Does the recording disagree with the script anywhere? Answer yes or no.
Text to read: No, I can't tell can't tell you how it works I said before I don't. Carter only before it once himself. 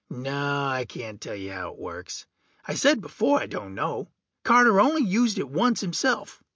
yes